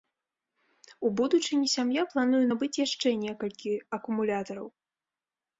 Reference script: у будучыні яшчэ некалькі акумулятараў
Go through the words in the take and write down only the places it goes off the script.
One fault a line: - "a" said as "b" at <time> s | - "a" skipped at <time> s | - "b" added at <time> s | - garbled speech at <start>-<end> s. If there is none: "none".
- "сям'я плануе набыць" added at 1.8 s